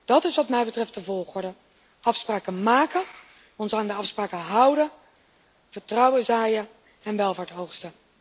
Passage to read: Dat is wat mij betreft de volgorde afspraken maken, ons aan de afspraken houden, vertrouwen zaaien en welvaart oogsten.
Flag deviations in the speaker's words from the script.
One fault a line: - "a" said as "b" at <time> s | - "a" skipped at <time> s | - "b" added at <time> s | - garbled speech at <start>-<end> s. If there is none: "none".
none